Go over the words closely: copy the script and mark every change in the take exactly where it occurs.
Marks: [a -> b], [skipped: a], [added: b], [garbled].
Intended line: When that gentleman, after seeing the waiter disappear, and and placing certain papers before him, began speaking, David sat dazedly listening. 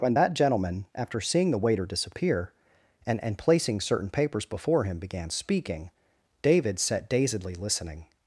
When that gentleman, after seeing the waiter disappear, and and placing certain papers before him, began speaking, David sat dazedly listening.